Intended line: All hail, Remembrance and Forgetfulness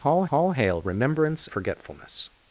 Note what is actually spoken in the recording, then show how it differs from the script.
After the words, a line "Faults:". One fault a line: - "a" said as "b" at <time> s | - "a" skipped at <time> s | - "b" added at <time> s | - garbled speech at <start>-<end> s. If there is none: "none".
All all hail, Remembrance Forgetfulness
Faults:
- "all" added at 0.3 s
- "and" skipped at 1.5 s